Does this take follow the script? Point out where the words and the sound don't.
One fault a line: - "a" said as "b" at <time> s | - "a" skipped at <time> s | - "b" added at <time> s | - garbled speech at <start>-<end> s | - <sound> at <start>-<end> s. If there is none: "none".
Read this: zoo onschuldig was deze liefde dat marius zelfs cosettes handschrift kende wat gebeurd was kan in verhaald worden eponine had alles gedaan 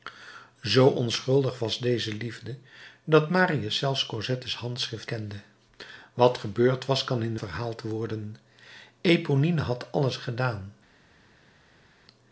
none